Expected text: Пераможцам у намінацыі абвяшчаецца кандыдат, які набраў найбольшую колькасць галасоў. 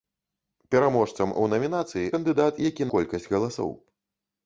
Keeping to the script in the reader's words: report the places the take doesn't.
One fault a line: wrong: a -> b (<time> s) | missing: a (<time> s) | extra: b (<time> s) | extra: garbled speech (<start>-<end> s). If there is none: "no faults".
missing: абвяшчаецца (2.1 s)
missing: набраў найбольшую (2.9 s)